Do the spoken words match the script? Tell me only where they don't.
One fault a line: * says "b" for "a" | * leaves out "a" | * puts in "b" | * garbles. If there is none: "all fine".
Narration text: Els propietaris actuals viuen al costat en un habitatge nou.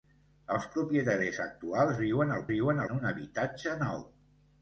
* says "viuen" for "costat"